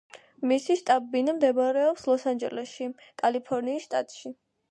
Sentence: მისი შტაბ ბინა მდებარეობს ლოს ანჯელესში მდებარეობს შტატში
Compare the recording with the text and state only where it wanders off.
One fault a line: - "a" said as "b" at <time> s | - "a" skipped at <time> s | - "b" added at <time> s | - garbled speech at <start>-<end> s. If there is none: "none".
- "მდებარეობს" said as "კალიფორნიის" at 3.2 s